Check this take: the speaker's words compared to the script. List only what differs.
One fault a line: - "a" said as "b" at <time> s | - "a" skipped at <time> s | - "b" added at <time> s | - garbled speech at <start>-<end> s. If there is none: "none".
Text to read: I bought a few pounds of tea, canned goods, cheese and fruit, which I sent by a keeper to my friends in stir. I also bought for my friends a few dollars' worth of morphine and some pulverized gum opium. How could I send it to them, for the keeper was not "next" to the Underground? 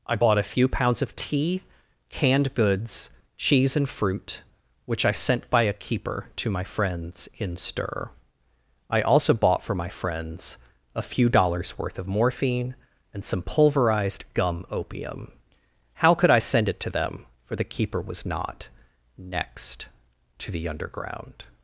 none